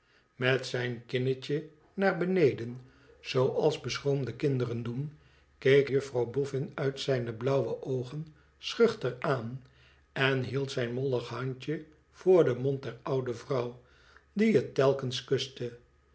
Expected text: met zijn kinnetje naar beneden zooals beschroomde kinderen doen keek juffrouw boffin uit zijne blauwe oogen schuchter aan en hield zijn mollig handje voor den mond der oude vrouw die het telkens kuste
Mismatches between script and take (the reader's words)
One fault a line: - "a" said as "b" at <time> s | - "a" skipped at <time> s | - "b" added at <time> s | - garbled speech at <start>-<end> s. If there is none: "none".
none